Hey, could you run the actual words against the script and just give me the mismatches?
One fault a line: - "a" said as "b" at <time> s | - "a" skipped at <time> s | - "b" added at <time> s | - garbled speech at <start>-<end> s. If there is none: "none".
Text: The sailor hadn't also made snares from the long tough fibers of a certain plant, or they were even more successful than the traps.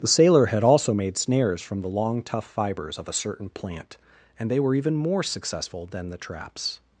- "hadn't" said as "had" at 0.5 s
- "or" said as "and" at 4.4 s